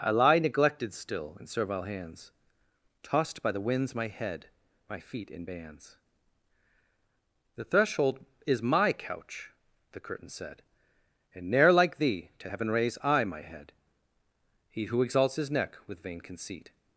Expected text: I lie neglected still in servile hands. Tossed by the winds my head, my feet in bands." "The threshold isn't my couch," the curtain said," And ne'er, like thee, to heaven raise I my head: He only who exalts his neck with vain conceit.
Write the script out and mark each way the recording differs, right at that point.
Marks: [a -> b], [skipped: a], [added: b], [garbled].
I lie neglected still in servile hands. Tossed by the winds my head, my feet in bands." "The threshold [isn't -> is] my couch," the curtain said," And ne'er, like thee, to heaven raise I my head: He [skipped: only] who exalts his neck with vain conceit.